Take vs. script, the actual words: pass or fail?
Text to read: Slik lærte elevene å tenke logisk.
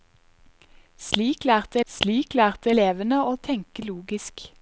fail